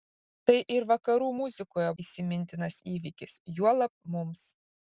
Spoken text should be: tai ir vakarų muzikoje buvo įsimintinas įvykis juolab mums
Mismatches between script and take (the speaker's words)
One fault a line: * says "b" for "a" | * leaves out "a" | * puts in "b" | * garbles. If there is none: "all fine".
* leaves out "buvo"